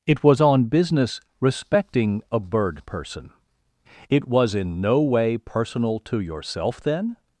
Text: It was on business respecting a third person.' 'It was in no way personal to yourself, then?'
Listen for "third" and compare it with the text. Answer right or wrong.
wrong